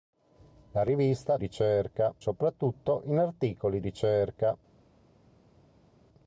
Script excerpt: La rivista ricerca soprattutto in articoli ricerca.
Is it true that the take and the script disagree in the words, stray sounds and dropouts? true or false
false